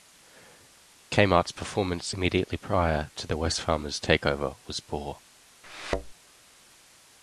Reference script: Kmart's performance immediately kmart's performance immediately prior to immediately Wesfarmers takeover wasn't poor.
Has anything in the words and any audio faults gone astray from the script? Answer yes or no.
yes